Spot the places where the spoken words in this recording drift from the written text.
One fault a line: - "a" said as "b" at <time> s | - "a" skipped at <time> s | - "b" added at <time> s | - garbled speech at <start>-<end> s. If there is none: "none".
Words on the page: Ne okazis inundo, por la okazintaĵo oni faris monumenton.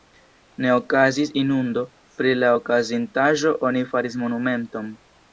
- "por" said as "pri" at 2.2 s